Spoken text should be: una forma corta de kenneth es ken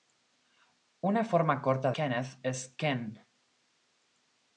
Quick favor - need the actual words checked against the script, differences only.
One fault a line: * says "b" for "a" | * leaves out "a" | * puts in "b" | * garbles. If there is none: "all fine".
* leaves out "de"